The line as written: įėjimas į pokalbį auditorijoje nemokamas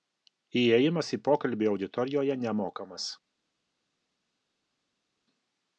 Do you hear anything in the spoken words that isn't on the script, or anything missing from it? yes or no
no